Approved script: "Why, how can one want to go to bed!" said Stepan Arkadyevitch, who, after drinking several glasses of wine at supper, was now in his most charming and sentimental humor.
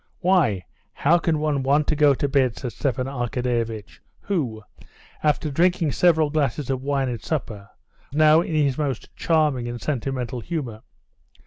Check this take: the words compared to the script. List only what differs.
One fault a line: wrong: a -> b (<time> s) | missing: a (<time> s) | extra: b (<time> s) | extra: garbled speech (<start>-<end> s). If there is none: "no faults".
missing: was (7.7 s)